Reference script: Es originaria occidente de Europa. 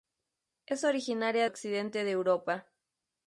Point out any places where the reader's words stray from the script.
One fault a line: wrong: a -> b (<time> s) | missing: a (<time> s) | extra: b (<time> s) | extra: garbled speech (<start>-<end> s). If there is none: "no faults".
no faults